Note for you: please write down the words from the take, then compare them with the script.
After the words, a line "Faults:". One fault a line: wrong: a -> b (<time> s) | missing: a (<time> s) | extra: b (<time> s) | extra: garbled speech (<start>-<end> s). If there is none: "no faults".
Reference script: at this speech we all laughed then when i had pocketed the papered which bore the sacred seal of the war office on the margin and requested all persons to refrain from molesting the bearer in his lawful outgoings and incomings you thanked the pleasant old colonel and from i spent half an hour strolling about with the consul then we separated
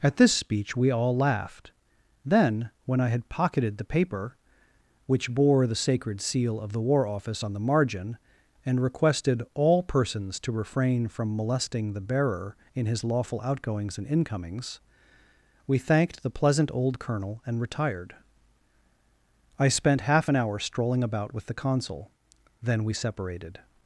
at this speech we all laughed then when i had pocketed the paper which bore the sacred seal of the war office on the margin and requested all persons to refrain from molesting the bearer in his lawful outgoings and incomings we thanked the pleasant old colonel and retired i spent half an hour strolling about with the consul then we separated
Faults:
wrong: papered -> paper (3.9 s)
wrong: you -> we (15.7 s)
wrong: from -> retired (17.6 s)